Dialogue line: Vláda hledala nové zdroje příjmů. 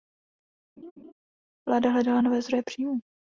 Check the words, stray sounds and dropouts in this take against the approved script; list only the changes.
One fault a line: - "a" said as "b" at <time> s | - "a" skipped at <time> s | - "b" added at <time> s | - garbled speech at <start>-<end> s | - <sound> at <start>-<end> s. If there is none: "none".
- laugh at 0.8-1.1 s